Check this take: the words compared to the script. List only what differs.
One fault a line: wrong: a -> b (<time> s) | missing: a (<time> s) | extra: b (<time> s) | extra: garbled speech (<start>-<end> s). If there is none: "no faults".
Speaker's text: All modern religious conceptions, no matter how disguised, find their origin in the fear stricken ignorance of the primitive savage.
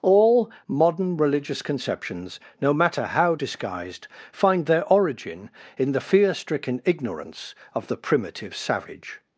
no faults